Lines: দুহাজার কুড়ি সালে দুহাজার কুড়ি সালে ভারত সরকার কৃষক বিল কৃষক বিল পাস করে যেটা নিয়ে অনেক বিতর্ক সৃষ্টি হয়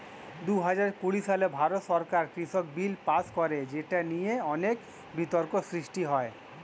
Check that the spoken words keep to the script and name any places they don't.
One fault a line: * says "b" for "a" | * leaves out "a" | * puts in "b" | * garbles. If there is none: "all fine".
* leaves out "দুহাজার কুড়ি সালে"
* leaves out "কৃষক বিল"